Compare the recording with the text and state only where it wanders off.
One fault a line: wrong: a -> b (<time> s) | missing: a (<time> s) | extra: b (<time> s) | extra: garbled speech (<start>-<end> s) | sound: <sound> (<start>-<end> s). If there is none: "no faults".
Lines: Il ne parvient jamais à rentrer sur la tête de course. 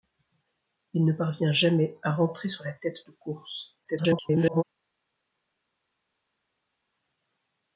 extra: garbled speech (3.8-4.6 s)